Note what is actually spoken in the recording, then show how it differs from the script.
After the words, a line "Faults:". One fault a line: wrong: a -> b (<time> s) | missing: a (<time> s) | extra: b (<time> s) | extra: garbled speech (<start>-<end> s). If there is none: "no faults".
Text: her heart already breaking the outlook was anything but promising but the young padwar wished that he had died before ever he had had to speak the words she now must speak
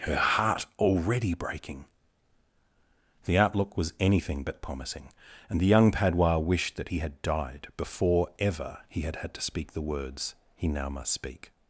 her heart already breaking the outlook was anything but promising and the young padwar wished that he had died before ever he had had to speak the words he now must speak
Faults:
wrong: but -> and (5.5 s)
wrong: she -> he (10.5 s)